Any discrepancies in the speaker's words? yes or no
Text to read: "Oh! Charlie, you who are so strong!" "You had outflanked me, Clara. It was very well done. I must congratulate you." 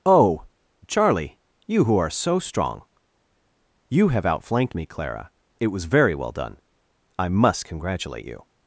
yes